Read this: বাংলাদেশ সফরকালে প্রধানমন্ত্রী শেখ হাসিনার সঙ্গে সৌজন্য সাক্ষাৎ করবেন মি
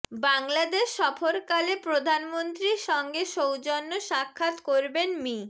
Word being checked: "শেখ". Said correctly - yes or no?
no